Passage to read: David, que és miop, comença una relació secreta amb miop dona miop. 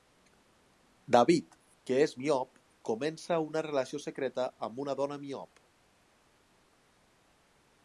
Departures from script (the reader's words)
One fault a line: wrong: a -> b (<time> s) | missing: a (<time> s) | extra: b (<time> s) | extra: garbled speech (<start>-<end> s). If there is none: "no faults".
wrong: miop -> una (4.8 s)